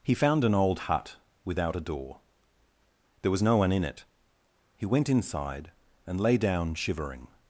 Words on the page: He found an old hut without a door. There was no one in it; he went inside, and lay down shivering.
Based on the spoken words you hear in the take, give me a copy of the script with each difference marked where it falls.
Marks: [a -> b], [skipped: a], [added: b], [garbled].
He found an old hut without a door. There was no one in it; he went inside, and lay down shivering.